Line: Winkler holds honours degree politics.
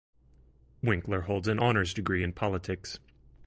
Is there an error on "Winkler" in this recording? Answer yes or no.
no